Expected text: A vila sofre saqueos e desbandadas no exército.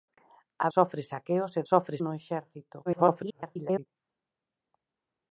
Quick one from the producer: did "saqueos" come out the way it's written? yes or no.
yes